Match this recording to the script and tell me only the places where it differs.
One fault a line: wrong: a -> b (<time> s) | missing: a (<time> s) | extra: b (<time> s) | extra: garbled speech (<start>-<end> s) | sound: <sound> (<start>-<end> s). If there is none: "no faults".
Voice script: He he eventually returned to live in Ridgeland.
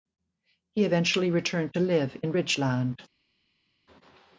missing: he (0.8 s)